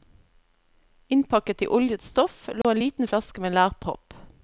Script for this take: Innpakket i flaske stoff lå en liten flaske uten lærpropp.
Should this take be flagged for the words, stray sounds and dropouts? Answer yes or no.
yes